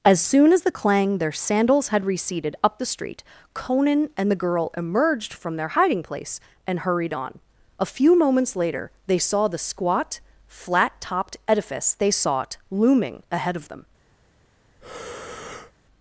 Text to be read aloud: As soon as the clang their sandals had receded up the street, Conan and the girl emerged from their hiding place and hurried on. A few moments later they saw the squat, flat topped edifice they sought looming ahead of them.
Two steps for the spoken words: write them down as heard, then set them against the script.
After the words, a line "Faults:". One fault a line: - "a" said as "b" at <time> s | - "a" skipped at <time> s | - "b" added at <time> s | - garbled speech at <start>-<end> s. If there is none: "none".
As soon as the clang their sandals had receded up the street, Conan and the girl emerged from their hiding place and hurried on. A few moments later they saw the squat, flat topped edifice they sought looming ahead of them.
Faults:
none